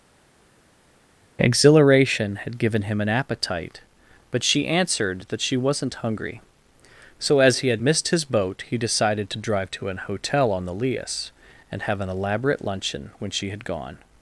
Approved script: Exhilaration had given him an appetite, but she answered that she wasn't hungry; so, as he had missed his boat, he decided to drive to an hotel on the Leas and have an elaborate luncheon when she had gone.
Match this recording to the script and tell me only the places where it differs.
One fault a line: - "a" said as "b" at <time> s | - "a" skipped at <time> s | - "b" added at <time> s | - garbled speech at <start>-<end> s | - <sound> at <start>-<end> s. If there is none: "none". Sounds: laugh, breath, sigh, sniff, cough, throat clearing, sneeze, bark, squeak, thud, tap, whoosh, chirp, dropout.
none